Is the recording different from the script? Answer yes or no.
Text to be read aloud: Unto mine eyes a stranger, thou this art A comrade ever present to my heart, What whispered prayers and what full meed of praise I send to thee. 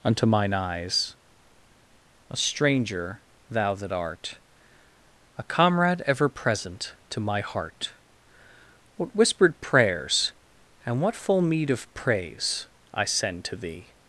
yes